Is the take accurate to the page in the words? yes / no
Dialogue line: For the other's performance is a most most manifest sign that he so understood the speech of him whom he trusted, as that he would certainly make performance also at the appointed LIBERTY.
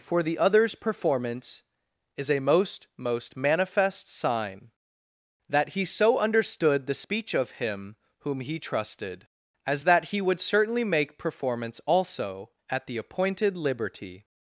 yes